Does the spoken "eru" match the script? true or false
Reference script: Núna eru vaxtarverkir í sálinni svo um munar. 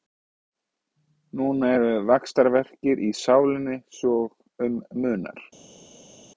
true